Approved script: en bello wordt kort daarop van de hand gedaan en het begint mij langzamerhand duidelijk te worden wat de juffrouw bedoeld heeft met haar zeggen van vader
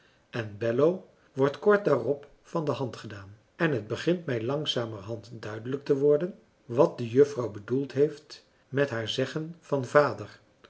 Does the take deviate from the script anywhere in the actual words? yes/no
no